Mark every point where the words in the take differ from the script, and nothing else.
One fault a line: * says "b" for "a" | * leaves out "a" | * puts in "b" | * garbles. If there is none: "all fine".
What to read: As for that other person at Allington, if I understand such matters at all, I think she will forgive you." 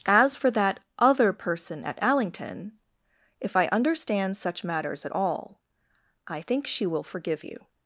all fine